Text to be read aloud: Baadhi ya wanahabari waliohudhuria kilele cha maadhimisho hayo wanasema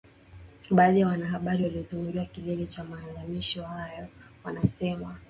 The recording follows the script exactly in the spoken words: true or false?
true